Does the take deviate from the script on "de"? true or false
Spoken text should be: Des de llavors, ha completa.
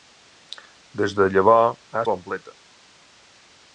false